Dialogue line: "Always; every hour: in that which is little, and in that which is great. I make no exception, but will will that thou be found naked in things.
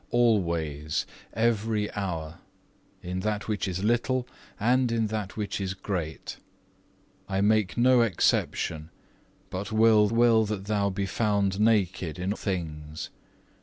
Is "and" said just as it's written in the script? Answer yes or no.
yes